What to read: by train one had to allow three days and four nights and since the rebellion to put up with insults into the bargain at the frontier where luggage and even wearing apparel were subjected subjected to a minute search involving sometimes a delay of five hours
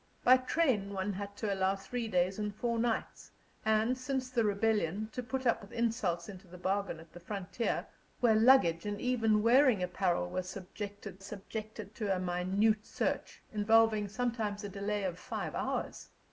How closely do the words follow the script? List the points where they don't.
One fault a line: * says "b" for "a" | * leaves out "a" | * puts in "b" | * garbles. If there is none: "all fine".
all fine